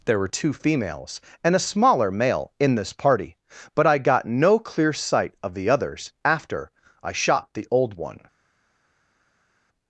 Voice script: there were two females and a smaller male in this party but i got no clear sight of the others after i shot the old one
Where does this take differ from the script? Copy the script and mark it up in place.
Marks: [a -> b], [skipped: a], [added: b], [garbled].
there were two females and a smaller male in this party but i got no clear sight of the others after i shot the old one